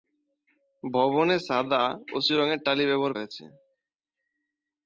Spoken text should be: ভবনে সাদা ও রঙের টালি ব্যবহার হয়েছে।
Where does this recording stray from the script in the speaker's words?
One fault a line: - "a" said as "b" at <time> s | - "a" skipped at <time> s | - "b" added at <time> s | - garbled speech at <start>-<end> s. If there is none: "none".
none